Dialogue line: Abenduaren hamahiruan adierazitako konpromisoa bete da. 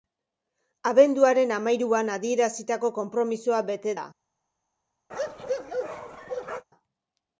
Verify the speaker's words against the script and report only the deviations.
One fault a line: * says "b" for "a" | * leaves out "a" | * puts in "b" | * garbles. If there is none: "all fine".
all fine